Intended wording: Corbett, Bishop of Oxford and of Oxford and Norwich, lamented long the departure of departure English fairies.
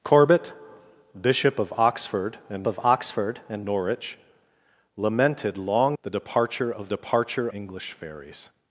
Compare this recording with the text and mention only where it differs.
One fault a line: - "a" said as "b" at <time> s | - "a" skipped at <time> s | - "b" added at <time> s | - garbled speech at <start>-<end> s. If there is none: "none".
none